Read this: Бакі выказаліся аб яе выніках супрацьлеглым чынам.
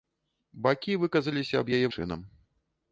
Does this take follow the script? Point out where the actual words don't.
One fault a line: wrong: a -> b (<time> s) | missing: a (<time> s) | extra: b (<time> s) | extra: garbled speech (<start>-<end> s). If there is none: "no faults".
missing: выніках супрацьлеглым (1.9 s)